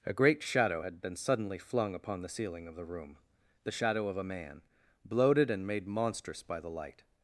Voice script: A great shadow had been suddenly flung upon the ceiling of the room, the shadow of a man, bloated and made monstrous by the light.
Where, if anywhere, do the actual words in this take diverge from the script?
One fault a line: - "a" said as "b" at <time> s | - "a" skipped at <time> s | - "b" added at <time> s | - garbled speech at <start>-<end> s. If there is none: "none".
none